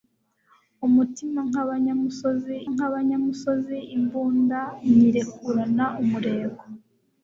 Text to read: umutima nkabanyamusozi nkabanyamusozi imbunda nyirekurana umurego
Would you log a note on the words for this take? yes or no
no